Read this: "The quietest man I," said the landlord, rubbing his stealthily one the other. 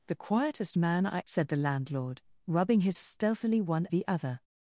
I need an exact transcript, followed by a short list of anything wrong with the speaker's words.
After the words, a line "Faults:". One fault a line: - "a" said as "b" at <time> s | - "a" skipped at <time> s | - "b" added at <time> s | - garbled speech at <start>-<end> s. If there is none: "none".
"The quietest man I," said the landlord, rubbing his stealthily one the other.
Faults:
none